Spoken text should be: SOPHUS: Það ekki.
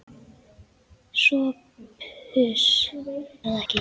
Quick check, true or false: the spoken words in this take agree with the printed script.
true